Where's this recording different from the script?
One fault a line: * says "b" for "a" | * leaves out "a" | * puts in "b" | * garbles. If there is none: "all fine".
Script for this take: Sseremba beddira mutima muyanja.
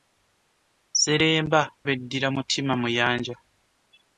all fine